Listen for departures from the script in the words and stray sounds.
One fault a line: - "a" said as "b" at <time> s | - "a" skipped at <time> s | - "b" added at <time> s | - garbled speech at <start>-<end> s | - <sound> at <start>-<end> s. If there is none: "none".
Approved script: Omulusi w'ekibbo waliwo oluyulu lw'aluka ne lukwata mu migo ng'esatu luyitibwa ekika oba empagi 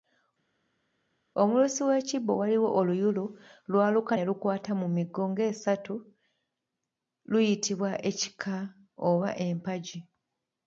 none